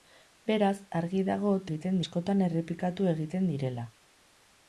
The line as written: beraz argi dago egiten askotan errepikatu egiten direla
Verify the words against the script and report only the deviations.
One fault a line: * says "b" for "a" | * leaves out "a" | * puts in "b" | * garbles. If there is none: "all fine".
all fine